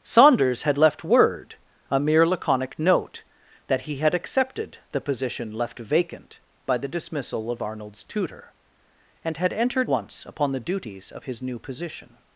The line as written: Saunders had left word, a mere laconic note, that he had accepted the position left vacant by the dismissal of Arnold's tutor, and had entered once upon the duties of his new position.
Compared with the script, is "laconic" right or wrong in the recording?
right